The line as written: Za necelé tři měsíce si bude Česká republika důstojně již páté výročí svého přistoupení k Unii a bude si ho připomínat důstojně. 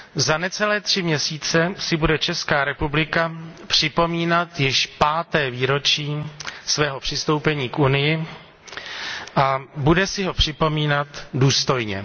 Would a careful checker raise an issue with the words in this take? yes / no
yes